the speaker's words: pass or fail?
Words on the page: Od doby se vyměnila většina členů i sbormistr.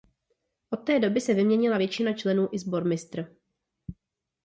fail